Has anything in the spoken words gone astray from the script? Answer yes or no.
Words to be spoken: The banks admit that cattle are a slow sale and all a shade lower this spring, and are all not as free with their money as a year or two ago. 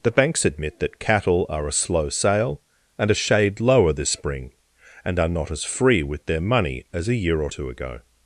yes